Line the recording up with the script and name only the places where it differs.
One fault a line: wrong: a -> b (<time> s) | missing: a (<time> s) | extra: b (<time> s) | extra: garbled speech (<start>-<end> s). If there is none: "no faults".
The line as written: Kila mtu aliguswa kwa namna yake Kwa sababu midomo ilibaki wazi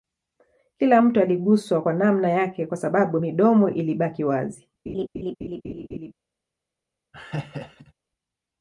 no faults